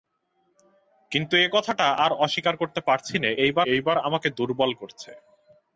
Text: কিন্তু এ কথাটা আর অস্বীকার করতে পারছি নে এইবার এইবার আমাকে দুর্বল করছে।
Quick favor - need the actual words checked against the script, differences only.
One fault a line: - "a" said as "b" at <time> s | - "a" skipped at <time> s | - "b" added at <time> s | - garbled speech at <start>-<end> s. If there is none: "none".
none